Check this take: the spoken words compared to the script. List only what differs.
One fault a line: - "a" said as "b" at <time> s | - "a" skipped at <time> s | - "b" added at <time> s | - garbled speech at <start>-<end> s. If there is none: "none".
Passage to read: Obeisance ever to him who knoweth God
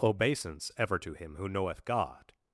none